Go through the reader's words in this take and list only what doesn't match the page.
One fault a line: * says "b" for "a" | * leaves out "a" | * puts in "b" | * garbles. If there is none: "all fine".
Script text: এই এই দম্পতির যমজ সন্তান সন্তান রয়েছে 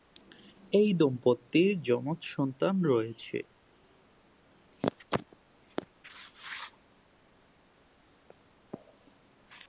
* leaves out "এই"
* leaves out "সন্তান"